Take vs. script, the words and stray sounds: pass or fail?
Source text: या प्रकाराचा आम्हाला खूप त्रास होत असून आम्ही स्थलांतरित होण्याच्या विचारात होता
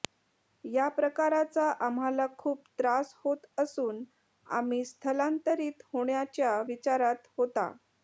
pass